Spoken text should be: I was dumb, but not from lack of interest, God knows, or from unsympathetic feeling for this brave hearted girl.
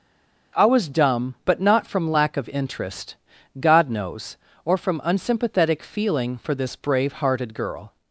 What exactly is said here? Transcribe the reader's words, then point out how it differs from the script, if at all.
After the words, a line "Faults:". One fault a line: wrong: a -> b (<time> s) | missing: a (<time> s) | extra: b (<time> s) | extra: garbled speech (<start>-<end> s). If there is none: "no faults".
I was dumb, but not from lack of interest, God knows, or from unsympathetic feeling for this brave hearted girl.
Faults:
no faults